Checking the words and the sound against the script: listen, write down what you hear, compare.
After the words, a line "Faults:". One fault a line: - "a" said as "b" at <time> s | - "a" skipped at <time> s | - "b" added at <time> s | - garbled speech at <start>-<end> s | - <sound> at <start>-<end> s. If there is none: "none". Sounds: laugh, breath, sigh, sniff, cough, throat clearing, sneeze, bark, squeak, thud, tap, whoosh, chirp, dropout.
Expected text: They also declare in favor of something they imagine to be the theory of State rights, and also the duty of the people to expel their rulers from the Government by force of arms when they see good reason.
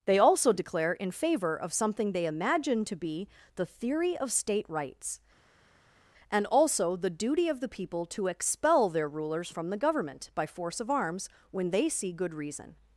They also declare in favor of something they imagine to be the theory of State rights, and also the duty of the people to expel their rulers from the Government by force of arms when they see good reason.
Faults:
none